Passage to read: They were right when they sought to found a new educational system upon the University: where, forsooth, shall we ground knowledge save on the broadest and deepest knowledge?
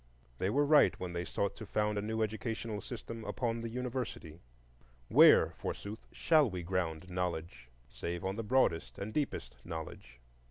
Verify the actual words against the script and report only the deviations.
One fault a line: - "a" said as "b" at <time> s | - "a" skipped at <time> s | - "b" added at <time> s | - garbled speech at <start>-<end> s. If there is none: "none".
none